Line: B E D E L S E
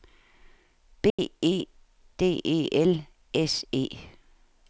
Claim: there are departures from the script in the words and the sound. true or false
true